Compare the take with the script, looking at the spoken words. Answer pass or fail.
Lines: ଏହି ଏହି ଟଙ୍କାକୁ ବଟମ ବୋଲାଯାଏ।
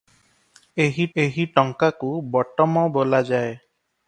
pass